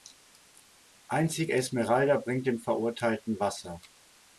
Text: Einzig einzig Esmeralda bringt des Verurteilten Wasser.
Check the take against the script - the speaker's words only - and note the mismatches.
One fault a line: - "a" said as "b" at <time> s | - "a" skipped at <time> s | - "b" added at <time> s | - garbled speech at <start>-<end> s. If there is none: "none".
- "einzig" skipped at 1.5 s
- "des" said as "dem" at 2.5 s